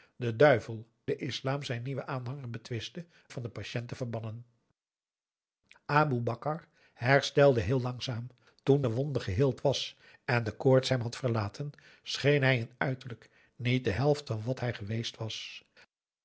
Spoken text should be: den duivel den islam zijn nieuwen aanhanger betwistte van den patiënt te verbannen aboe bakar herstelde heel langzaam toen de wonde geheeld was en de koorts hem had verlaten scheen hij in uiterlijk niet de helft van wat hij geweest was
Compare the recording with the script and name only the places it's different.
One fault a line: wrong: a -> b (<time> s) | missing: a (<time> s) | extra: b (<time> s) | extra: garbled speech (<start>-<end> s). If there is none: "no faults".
no faults